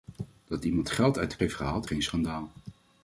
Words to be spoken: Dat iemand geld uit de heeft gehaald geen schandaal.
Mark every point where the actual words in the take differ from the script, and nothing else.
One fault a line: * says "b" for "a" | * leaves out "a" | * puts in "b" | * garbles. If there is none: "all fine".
all fine